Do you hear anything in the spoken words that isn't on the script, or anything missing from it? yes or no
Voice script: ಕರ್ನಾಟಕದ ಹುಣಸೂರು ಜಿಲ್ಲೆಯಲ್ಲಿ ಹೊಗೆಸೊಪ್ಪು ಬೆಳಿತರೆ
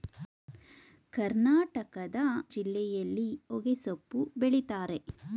yes